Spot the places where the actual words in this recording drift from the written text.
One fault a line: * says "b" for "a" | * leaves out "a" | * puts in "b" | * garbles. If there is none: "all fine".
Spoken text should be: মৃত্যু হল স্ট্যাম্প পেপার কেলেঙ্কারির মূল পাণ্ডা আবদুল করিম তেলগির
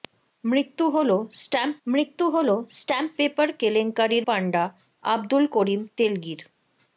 * puts in "মৃত্যু হল স্ট্যাম্প"
* leaves out "মূল"